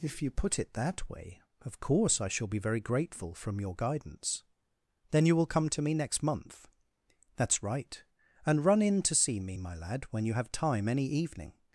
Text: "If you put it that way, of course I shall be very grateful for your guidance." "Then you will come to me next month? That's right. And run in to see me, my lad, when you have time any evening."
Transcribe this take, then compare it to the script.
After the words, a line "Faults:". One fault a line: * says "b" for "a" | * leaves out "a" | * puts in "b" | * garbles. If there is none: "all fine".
"If you put it that way, of course I shall be very grateful from your guidance." "Then you will come to me next month? That's right. And run in to see me, my lad, when you have time any evening."
Faults:
* says "from" for "for"